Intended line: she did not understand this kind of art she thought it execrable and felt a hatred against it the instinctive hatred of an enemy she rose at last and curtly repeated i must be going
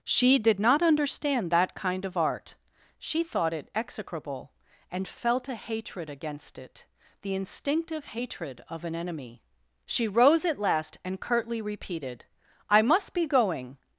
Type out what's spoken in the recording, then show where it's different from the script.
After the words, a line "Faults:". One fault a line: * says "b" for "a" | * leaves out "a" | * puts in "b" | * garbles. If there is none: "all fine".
she did not understand that kind of art she thought it execrable and felt a hatred against it the instinctive hatred of an enemy she rose at last and curtly repeated i must be going
Faults:
* says "that" for "this"